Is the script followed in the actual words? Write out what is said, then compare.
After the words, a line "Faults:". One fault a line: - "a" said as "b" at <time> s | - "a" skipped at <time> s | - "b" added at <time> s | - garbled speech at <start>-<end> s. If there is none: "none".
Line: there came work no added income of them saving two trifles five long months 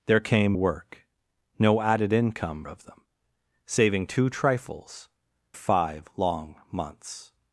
there came work no added income of them saving two trifles five long months
Faults:
none